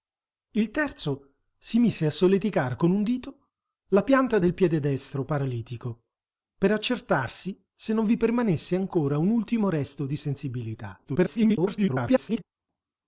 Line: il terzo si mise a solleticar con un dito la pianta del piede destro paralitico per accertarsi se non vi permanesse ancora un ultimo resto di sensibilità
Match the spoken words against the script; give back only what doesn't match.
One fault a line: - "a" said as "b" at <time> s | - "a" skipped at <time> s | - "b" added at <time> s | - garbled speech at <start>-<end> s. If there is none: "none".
- garbled speech at 11.0-12.4 s